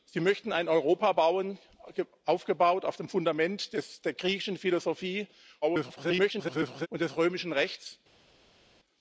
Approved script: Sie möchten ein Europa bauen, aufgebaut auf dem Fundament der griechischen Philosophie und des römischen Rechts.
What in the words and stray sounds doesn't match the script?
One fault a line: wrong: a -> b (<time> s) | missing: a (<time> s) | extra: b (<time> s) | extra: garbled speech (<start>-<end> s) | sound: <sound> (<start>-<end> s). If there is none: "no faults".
extra: garbled speech (5.6-6.9 s)